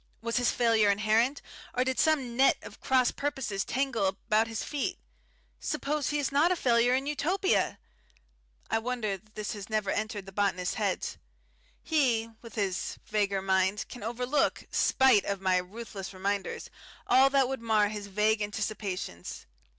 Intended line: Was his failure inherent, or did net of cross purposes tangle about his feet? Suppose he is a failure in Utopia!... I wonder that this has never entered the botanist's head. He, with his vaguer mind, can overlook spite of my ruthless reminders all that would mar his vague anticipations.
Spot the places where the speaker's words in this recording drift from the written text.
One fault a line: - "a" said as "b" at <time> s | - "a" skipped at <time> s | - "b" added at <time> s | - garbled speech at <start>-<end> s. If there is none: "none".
- "some" added at 2.0 s
- "not" added at 6.3 s